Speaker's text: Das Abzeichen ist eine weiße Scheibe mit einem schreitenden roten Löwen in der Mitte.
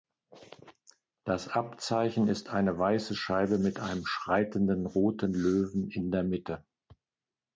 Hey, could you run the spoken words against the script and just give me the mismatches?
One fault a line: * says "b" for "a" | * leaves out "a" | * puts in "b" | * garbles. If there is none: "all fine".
all fine